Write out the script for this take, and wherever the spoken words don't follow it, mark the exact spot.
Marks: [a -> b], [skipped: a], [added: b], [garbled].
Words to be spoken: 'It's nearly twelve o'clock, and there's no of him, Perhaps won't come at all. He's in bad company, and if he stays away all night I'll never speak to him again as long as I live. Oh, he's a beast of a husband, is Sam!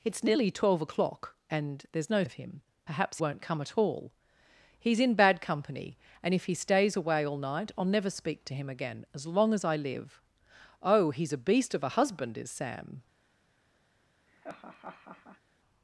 'It's nearly twelve o'clock, and there's no of him, Perhaps won't come at all. He's in bad company, and if he stays away all night I'll never speak to him again as long as I live. Oh, he's a beast of a husband, is Sam!